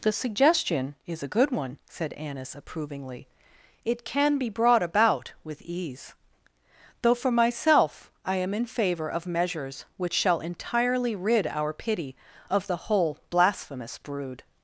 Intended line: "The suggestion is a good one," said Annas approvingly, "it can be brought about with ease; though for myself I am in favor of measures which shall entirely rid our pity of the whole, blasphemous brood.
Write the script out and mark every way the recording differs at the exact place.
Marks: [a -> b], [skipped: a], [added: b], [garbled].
"The suggestion is a good one," said Annas approvingly, "it can be brought about with ease; though for myself I am in favor of measures which shall entirely rid our pity of the whole, blasphemous brood.